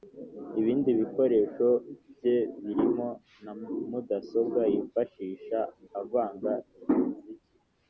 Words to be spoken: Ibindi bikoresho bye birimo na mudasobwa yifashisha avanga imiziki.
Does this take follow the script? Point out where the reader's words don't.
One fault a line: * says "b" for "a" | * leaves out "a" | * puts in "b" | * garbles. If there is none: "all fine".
all fine